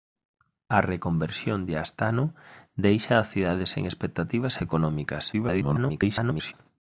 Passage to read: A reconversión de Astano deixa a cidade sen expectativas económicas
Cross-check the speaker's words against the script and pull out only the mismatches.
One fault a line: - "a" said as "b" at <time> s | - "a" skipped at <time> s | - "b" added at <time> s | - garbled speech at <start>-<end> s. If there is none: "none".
- garbled speech at 5.3-6.5 s